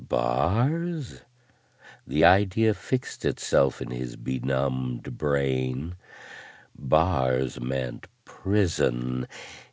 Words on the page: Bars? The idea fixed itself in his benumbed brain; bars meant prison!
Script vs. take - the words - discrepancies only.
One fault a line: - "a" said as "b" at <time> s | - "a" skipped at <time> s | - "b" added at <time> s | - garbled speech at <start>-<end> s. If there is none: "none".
none